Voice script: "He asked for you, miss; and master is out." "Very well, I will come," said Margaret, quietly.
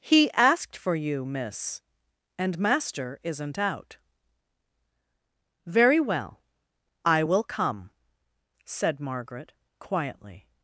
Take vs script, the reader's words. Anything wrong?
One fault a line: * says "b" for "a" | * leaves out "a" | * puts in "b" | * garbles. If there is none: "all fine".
* says "isn't" for "is"